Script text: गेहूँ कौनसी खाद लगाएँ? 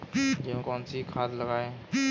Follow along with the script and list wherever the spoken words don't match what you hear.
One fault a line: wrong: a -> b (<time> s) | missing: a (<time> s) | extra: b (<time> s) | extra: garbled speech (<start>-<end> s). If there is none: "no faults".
no faults